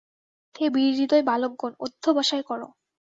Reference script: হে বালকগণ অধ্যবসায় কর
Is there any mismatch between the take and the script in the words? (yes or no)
yes